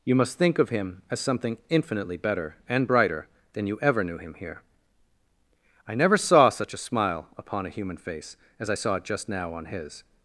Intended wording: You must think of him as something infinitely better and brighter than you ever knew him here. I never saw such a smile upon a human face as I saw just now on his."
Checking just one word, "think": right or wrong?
right